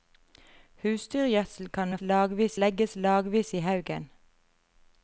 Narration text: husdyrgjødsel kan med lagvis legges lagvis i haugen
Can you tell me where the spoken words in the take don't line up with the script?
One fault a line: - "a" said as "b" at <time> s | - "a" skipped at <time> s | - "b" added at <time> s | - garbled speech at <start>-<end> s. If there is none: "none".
none